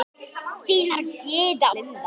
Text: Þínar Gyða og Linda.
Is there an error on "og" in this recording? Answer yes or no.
yes